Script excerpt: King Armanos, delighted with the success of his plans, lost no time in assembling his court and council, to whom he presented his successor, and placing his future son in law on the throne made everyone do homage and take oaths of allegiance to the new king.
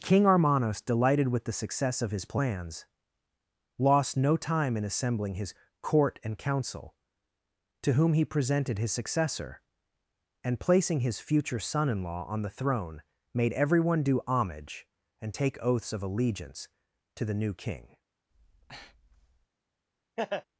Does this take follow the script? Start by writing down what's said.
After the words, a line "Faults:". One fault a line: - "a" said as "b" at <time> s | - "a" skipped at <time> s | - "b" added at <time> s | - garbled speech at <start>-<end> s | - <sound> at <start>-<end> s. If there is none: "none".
King Armanos, delighted with the success of his plans, lost no time in assembling his court and council, to whom he presented his successor, and placing his future son in law on the throne made everyone do homage and take oaths of allegiance to the new king.
Faults:
- breath at 18.3-19.5 s
- laugh at 20.2-20.5 s